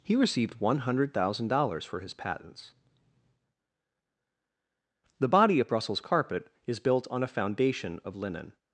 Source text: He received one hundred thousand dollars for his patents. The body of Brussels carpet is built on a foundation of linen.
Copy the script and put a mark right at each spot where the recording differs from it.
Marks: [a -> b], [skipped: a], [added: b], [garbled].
He received one hundred thousand dollars for his patents. The body of Brussels carpet is built on a foundation of linen.